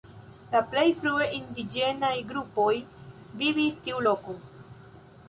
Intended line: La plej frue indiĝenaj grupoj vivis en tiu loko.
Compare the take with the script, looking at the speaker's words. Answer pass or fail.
fail